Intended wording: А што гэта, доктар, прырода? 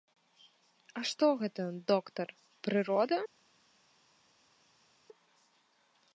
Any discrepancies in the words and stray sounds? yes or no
no